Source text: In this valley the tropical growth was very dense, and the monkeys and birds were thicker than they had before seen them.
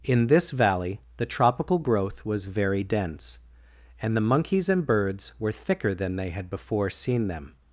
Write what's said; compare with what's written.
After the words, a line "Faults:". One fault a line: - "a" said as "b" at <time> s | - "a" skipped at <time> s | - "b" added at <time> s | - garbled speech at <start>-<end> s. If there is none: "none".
In this valley the tropical growth was very dense, and the monkeys and birds were thicker than they had before seen them.
Faults:
none